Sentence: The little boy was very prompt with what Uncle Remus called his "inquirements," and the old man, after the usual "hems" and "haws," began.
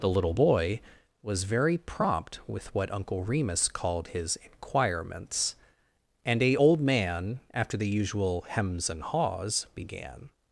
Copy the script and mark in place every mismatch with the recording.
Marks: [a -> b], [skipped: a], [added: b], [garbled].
The little boy was very prompt with what Uncle Remus called his "inquirements," and [the -> a] old man, after the usual "hems" and "haws," began.